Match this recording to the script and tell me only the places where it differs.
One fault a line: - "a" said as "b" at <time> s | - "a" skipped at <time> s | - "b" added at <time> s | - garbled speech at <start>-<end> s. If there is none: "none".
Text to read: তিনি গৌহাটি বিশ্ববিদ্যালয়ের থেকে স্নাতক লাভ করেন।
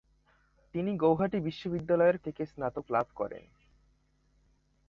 none